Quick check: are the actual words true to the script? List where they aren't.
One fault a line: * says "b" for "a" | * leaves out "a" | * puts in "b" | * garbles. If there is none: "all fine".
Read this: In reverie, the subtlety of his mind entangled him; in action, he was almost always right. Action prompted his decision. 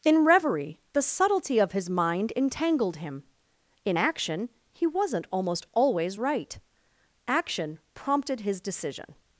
* says "wasn't" for "was"